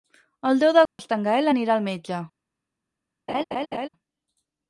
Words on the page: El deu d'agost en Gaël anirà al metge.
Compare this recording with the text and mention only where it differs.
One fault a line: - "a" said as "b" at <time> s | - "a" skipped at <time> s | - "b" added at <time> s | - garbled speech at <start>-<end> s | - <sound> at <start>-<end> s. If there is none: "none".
- dropout at 0.9-1.0 s
- laugh at 3.3-3.9 s